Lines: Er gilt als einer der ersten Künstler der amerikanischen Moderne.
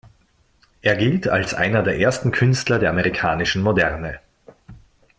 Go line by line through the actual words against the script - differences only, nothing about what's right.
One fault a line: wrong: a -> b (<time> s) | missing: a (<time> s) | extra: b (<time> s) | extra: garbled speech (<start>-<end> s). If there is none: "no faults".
no faults